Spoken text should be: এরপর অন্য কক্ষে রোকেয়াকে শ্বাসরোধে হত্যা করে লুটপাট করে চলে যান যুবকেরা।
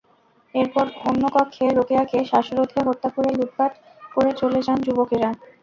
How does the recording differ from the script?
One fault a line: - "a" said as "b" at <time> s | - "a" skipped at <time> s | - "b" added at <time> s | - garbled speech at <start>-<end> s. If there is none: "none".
none